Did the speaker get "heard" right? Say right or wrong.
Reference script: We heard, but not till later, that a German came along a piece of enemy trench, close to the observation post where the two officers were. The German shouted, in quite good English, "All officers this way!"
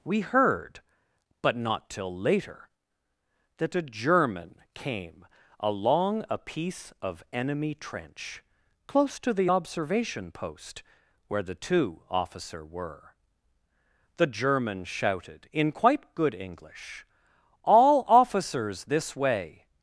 right